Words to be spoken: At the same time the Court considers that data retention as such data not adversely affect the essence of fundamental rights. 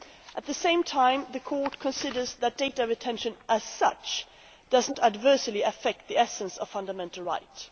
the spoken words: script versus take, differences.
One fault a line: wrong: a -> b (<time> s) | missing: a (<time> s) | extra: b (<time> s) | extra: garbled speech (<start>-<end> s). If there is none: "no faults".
wrong: data -> does (4.7 s)